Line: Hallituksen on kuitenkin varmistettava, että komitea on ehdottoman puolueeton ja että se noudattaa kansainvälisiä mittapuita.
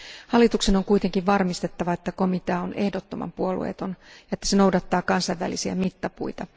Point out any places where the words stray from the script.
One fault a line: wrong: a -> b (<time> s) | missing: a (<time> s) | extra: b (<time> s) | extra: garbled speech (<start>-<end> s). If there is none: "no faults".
no faults